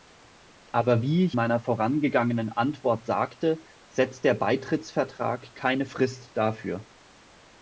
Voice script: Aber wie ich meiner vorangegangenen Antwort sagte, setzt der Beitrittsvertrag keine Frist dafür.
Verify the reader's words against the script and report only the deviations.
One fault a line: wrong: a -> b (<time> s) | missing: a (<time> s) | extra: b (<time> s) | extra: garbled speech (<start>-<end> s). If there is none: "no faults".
no faults